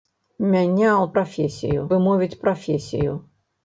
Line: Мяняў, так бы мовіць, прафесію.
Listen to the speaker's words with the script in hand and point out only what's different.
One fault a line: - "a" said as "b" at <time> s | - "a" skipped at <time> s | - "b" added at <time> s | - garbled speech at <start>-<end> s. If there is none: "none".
- "так" said as "прафесію" at 1.2 s